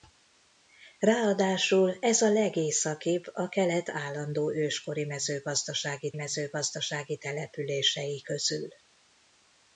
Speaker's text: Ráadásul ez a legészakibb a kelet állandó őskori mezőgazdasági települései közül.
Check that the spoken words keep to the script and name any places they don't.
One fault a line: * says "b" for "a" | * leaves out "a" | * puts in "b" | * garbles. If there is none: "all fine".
* puts in "mezőgazdasági"